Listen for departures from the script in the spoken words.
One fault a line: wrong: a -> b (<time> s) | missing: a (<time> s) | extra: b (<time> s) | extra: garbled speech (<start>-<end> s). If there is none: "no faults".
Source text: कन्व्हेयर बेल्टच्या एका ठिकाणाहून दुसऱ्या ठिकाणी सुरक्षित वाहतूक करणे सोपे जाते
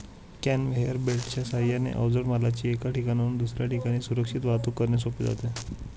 extra: साहाय्याने अवजड मालाची (1.4 s)